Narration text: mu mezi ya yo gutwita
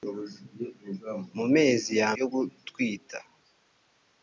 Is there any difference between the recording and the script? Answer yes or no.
no